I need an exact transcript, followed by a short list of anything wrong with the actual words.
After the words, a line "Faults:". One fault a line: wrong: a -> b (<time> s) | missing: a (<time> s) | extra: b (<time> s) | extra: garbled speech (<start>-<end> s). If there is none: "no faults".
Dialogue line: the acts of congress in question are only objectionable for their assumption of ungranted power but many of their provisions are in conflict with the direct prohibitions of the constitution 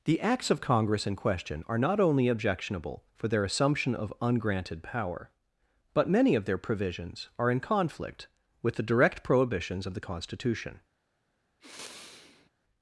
the acts of congress in question are not only objectionable for their assumption of ungranted power but many of their provisions are in conflict with the direct prohibitions of the constitution
Faults:
extra: not (1.8 s)